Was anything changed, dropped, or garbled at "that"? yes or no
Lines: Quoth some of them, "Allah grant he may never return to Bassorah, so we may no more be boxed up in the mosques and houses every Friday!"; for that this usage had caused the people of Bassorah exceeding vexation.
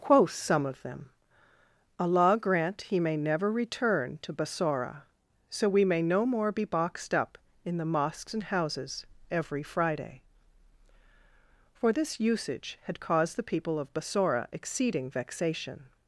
yes